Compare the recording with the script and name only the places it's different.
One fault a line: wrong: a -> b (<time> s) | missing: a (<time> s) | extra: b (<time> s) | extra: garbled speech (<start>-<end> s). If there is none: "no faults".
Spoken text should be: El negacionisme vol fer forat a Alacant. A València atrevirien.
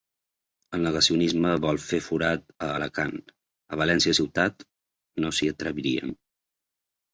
extra: ciutat no s'hi (4.2 s)